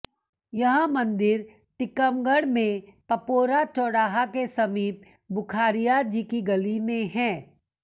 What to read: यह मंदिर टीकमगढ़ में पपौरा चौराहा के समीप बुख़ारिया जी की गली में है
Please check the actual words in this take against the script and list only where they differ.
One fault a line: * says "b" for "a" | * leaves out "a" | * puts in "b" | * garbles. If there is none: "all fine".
all fine